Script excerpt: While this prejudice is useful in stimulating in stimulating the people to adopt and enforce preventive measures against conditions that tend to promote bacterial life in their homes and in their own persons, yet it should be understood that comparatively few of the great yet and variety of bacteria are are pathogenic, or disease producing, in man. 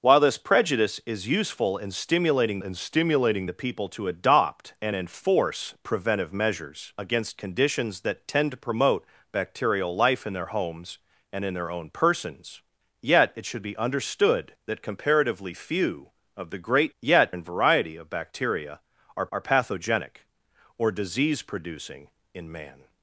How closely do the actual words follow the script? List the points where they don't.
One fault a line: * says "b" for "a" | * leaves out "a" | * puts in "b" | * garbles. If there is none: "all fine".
all fine